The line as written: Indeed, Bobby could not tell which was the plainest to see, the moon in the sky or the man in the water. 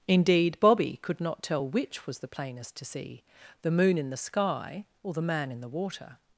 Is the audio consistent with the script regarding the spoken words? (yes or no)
yes